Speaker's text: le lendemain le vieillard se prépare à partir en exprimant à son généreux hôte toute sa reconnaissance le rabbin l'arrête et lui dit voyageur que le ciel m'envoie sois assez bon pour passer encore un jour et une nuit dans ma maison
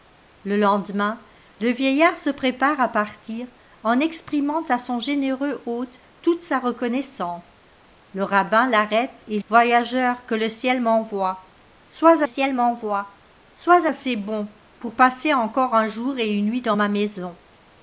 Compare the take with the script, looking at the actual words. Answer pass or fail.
fail